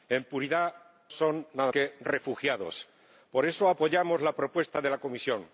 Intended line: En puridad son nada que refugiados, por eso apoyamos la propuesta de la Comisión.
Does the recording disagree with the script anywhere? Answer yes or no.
no